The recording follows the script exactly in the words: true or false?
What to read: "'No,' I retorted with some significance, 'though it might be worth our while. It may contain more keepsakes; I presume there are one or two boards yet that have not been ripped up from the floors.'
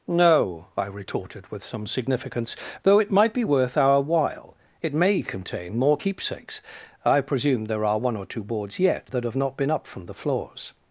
false